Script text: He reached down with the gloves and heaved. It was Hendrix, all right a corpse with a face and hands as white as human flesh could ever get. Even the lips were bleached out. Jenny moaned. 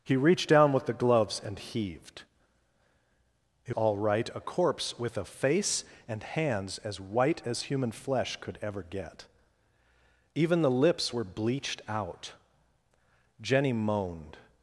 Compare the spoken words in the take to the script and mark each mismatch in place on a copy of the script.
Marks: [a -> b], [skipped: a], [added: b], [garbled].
He reached down with the gloves and heaved. It [skipped: was Hendrix,] all right a corpse with a face and hands as white as human flesh could ever get. Even the lips were bleached out. Jenny moaned.